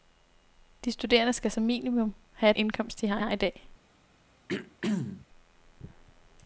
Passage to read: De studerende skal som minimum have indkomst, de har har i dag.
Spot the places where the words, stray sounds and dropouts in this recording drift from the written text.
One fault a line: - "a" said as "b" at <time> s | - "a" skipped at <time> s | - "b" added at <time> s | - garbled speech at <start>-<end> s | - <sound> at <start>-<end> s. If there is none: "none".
- throat clearing at 4.5-5.3 s